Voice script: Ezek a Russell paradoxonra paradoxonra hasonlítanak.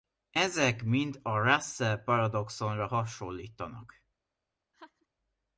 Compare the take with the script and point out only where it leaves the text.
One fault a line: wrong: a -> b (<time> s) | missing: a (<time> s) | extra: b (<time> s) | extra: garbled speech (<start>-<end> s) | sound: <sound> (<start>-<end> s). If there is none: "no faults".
extra: mind (0.8 s)
missing: paradoxonra (2.9 s)
sound: laugh (4.7-5.1 s)